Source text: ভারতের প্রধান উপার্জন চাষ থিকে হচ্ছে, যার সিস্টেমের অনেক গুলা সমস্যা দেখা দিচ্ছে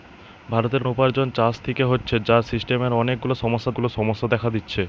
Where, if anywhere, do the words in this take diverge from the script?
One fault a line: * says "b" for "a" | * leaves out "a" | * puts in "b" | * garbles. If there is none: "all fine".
* leaves out "প্রধান"
* puts in "গুলা সমস্যা"